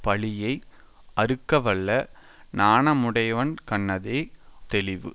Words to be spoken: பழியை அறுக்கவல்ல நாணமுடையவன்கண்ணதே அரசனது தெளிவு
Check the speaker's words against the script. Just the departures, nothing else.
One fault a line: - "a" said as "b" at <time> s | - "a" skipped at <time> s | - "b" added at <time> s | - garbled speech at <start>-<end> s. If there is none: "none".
- "அரசனது" skipped at 4.2 s